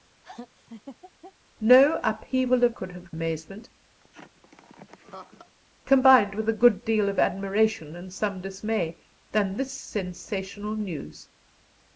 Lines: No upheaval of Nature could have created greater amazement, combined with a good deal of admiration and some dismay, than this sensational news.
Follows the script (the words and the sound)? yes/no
no